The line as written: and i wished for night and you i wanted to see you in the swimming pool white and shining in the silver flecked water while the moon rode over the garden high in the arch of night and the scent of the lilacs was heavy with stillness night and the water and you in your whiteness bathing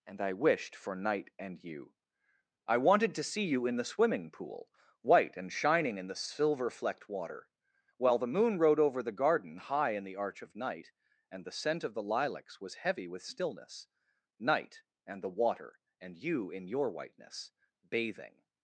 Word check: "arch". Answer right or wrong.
right